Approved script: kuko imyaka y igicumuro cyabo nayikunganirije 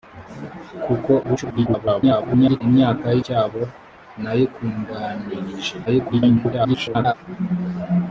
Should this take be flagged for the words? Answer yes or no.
yes